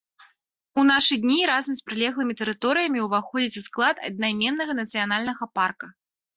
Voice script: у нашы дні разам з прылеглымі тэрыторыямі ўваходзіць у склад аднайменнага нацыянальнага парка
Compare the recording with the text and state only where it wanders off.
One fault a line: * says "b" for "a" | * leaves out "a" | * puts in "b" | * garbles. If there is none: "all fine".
all fine